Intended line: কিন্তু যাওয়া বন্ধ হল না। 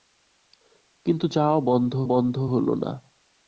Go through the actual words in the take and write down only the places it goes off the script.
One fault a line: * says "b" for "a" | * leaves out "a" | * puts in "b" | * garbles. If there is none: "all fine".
* puts in "বন্ধ"